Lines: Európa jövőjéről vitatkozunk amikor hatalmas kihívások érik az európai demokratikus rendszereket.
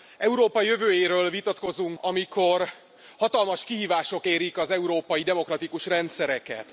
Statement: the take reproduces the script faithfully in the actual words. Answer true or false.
true